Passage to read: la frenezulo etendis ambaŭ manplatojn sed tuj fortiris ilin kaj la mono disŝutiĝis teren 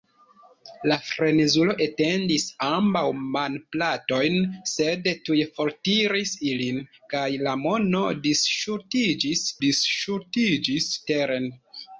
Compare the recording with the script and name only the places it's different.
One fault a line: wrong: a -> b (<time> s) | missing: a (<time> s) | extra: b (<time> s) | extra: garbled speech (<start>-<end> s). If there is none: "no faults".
extra: disŝutiĝis (9.6 s)